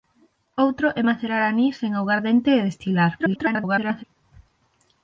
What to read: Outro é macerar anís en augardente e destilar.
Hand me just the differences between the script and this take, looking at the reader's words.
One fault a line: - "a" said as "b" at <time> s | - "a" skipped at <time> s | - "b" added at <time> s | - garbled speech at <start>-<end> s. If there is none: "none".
- garbled speech at 3.2-4.0 s